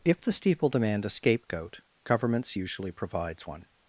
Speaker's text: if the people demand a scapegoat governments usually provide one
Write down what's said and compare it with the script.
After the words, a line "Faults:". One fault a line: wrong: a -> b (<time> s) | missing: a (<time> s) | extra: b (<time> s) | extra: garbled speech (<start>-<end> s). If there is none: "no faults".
if the steeple demand a scapegoat governments usually provides one
Faults:
wrong: people -> steeple (0.3 s)
wrong: provide -> provides (2.9 s)